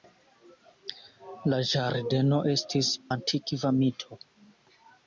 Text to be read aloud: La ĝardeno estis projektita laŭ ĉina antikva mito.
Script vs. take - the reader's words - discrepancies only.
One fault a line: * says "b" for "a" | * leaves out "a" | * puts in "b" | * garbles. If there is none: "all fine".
* leaves out "projektita laŭ ĉina"